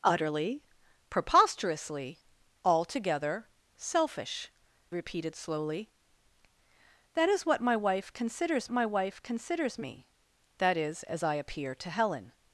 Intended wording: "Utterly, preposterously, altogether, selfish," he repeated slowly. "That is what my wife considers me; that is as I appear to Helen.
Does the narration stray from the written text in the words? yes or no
yes